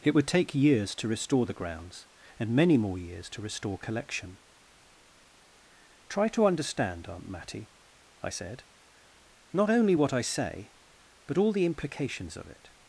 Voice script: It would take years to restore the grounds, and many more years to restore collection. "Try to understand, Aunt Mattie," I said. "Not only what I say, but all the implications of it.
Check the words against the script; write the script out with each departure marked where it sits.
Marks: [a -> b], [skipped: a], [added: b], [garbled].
It would take years to restore the grounds, and many more years to restore collection. "Try to understand, Aunt Mattie," I said. "Not only what I say, but all the implications of it.